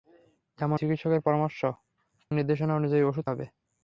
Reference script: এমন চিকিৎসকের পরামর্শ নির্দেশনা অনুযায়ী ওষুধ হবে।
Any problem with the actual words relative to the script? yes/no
no